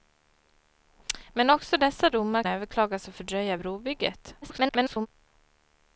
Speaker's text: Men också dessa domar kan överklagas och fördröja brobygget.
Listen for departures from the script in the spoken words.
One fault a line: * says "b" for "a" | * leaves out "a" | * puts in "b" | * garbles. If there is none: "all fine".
* leaves out "kan"
* garbles